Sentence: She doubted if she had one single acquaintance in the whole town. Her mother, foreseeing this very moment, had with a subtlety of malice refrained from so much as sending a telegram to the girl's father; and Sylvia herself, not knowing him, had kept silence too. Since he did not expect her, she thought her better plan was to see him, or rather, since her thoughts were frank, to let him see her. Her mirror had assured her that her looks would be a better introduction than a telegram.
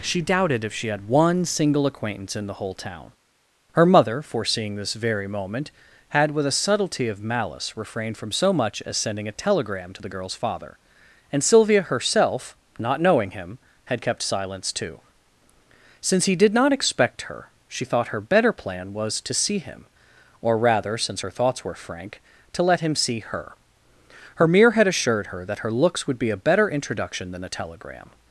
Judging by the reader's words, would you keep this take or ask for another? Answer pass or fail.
pass